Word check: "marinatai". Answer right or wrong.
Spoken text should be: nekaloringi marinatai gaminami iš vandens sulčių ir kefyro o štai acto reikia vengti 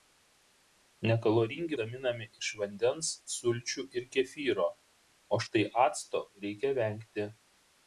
wrong